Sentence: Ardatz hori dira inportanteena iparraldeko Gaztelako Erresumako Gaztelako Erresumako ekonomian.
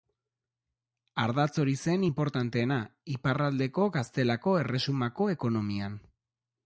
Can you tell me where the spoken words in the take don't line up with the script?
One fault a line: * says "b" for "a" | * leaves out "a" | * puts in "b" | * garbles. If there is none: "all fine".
* says "zen" for "dira"
* leaves out "Gaztelako Erresumako"